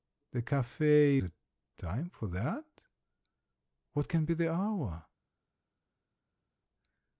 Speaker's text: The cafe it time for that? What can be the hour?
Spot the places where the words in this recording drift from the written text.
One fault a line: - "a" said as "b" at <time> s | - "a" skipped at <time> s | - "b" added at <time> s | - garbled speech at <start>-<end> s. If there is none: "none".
none